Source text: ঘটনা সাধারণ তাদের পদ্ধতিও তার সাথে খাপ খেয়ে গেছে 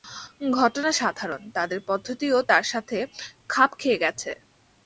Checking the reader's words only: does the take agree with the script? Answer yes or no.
yes